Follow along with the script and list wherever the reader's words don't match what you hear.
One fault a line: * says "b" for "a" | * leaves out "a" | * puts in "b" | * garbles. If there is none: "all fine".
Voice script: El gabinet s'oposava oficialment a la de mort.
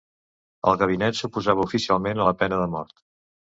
* puts in "pena"